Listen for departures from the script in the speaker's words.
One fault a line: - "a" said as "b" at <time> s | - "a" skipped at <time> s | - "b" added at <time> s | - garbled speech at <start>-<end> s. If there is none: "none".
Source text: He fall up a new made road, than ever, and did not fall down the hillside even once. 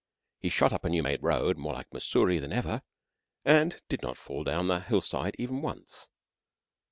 - "fall" said as "shot" at 0.5 s
- "more like Mussoorie" added at 1.6 s